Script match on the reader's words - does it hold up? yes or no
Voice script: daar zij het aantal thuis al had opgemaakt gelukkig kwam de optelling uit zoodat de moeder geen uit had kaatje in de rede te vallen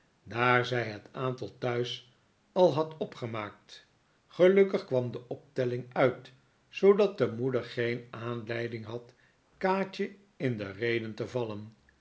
no